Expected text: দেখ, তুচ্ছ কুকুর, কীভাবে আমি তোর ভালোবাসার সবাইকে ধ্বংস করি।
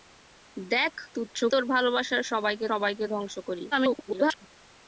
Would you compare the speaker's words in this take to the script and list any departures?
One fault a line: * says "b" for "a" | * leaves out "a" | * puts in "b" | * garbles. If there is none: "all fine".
* leaves out "কুকুর কীভাবে আমি"
* puts in "সবাইকে"
* garbles